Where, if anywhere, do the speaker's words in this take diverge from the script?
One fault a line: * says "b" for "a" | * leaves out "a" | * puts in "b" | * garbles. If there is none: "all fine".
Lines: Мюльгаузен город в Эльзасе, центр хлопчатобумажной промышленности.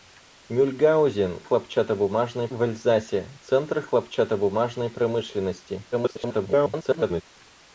* says "хлопчатобумажной" for "город"
* garbles